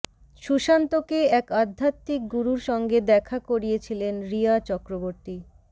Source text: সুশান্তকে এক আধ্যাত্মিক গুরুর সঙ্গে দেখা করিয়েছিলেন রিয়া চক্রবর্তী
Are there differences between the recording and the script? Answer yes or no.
no